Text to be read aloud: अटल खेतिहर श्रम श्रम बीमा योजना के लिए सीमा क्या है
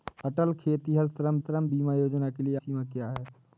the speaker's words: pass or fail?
pass